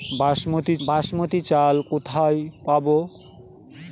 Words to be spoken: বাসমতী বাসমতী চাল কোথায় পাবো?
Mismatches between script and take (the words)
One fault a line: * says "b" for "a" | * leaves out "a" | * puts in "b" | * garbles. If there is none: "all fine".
all fine